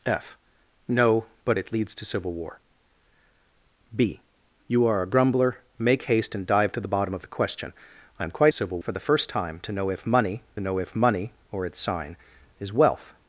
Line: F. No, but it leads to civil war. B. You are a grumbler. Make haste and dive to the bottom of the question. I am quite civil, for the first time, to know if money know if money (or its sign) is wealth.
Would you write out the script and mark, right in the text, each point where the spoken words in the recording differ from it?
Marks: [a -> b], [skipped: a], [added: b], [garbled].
F. No, but it leads to civil war. B. You are a grumbler. Make haste and dive to the bottom of the question. I am quite civil, for the first time, to know if money know if money (or its sign) is wealth.